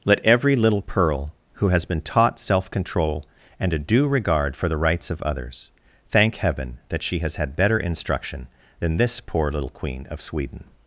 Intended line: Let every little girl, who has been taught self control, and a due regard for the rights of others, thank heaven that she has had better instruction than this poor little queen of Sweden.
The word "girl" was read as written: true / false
false